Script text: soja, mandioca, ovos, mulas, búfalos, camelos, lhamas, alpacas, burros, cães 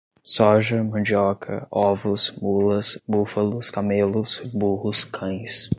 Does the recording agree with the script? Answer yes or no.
no